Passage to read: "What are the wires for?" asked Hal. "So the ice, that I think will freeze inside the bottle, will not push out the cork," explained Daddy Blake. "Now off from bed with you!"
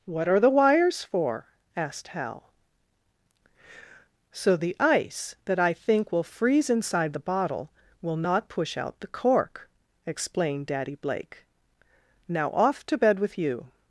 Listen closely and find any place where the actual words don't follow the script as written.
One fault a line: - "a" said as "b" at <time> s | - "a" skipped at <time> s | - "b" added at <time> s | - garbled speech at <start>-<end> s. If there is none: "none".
- "from" said as "to" at 12.9 s